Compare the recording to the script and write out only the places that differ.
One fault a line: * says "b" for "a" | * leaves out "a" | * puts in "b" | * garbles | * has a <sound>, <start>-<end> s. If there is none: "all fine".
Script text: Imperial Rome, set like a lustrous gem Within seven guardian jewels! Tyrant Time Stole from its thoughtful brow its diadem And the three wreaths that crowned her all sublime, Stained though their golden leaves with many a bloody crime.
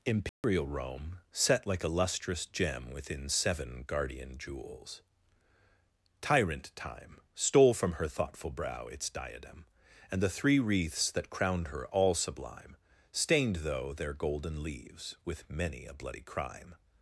* has a dropout, 0.3-0.4 s
* says "her" for "its"